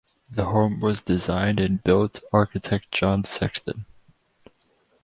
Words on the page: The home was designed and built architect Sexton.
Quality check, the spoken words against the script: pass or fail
fail